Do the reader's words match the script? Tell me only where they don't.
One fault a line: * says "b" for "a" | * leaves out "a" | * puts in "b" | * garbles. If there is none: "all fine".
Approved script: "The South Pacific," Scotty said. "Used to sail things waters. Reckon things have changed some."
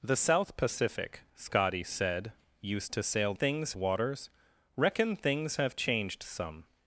all fine